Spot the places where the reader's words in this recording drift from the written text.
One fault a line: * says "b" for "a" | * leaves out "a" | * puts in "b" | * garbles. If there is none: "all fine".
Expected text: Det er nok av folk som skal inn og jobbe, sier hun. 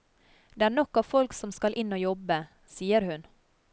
all fine